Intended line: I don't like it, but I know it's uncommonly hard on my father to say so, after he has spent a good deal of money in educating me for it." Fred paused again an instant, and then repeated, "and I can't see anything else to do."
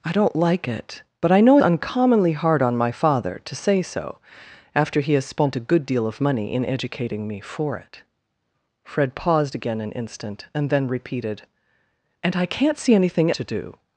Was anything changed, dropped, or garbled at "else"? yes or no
yes